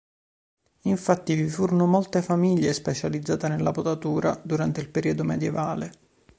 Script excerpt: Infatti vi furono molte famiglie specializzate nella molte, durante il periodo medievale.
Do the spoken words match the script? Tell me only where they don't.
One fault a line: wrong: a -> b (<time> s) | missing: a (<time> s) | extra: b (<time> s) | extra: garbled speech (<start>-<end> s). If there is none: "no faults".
wrong: molte -> potatura (3.7 s)